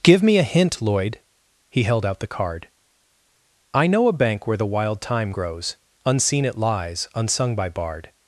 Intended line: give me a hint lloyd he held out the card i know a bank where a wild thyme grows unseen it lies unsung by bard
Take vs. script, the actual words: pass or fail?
fail